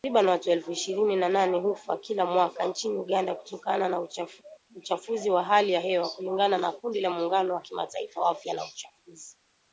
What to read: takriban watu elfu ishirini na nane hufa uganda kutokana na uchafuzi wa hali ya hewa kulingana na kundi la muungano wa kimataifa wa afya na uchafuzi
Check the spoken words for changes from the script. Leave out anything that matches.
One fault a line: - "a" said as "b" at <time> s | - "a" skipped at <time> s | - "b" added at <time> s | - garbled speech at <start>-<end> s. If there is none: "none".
- "kila mwaka nchini" added at 2.0 s